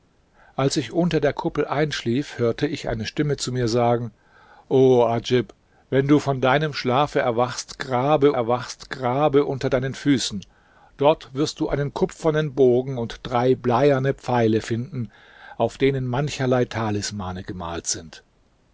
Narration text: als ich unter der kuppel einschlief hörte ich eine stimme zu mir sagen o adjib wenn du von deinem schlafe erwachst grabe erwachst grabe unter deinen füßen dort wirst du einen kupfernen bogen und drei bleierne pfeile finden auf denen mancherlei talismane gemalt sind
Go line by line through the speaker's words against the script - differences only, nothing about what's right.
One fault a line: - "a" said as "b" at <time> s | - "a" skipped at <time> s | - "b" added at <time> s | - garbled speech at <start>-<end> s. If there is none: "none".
none